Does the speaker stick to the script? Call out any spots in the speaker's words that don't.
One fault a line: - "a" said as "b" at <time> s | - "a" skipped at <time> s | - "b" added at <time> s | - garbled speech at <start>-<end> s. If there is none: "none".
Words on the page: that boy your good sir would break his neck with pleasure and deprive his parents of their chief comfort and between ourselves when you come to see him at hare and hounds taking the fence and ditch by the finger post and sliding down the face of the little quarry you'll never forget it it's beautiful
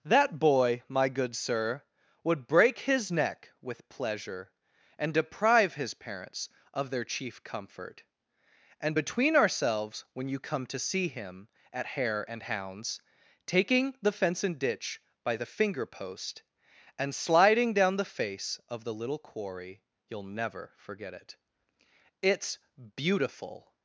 - "your" said as "my" at 0.9 s